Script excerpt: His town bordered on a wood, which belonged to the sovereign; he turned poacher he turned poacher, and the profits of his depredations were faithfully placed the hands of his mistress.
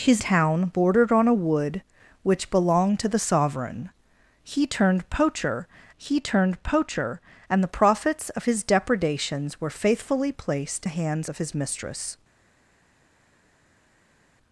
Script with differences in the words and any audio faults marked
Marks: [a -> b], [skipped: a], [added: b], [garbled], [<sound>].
His town bordered on a wood, which belonged to the sovereign; he turned poacher he turned poacher, and the profits of his depredations were faithfully placed the hands of his mistress.